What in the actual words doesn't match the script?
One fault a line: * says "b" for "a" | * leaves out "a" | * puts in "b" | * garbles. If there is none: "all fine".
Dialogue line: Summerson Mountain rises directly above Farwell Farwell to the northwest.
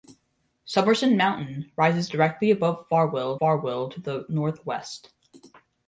all fine